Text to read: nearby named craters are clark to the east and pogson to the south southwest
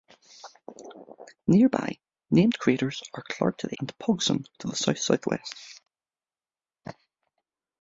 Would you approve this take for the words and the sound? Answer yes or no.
no